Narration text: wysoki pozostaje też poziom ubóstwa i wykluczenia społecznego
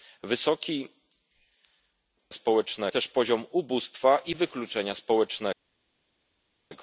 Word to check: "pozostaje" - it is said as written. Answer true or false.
false